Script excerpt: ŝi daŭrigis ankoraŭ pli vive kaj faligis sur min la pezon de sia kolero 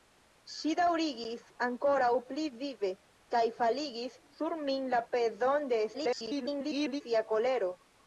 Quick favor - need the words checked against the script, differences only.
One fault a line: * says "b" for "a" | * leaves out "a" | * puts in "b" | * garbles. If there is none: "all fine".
* garbles